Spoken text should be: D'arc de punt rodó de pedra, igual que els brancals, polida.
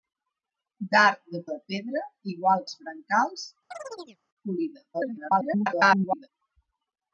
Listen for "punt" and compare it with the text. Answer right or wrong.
wrong